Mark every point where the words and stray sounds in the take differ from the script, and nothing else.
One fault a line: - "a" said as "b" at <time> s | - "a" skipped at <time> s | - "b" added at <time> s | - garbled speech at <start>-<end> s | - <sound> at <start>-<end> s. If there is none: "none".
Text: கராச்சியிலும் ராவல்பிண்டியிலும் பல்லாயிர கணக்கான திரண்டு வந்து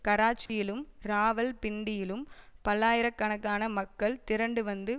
- dropout at 0.5-0.5 s
- "மக்கள்" added at 3.7 s